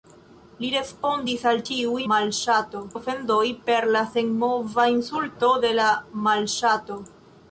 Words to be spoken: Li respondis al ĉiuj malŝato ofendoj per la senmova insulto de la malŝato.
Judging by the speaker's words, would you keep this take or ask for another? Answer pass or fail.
pass